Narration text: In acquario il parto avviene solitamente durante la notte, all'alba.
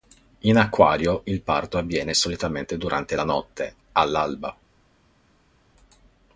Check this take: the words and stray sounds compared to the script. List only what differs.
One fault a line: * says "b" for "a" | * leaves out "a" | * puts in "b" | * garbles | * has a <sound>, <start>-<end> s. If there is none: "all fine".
all fine